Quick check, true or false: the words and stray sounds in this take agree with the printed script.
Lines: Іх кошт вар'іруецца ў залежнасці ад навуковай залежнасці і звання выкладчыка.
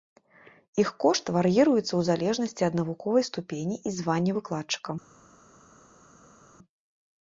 false